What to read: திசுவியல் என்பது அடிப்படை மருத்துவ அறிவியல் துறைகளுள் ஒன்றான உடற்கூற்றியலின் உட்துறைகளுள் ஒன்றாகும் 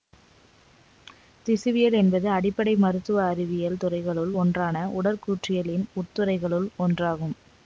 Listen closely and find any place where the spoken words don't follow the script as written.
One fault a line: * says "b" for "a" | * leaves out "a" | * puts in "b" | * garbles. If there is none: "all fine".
all fine